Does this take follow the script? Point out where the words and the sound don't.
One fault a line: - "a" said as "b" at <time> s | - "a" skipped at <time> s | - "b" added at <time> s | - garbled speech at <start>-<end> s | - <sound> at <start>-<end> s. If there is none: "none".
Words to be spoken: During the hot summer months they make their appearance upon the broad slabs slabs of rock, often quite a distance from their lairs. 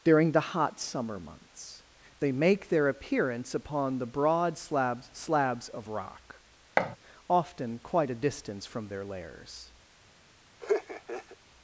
- thud at 6.8-7.0 s
- laugh at 10.6-11.4 s